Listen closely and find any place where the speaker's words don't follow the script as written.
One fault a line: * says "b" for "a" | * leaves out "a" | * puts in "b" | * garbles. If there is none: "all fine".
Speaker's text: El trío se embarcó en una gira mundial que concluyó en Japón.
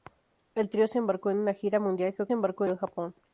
* says "embarcó" for "concluyó"